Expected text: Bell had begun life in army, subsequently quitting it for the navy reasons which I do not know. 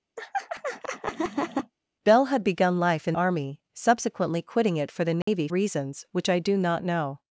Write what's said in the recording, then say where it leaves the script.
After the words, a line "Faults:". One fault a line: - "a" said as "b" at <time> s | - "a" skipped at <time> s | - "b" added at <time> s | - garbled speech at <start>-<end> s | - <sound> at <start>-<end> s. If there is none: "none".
Bell had begun life in army, subsequently quitting it for the navy reasons which I do not know.
Faults:
- laugh at 0.2-1.7 s
- dropout at 5.2-5.3 s